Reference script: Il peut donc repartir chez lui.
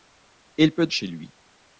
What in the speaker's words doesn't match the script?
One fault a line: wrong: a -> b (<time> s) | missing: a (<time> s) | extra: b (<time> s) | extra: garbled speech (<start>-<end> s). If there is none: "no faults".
missing: donc repartir (0.9 s)